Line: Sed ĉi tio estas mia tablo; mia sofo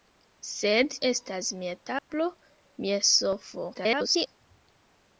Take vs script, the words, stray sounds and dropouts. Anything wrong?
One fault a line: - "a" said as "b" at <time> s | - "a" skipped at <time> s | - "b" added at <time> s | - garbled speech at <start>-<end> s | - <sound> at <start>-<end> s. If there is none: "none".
- "ĉi tio" skipped at 0.9 s
- dropout at 2.0-2.1 s
- garbled speech at 3.7-4.3 s